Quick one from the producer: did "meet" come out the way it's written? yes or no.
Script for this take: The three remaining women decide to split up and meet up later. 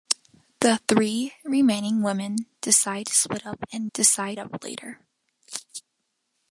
no